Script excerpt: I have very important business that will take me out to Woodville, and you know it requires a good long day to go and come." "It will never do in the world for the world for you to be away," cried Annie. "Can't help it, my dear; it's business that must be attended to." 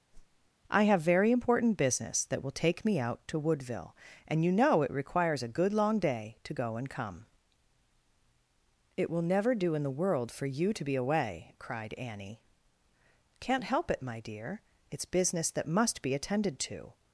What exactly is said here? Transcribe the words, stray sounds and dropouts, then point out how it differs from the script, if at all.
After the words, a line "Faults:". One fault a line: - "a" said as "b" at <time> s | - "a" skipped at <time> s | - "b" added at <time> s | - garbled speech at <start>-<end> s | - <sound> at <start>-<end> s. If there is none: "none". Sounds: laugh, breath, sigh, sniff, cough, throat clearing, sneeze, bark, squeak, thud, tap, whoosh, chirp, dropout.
I have very important business that will take me out to Woodville, and you know it requires a good long day to go and come." "It will never do in the world for you to be away," cried Annie. "Can't help it, my dear; it's business that must be attended to."
Faults:
- whoosh at 0.1-0.5 s
- "the world for" skipped at 10.5 s